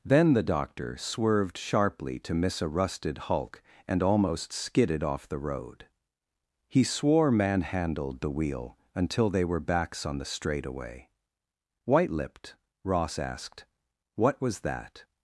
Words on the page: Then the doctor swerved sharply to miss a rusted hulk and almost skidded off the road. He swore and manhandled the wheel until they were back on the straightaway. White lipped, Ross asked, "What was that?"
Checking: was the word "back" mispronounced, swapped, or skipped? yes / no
yes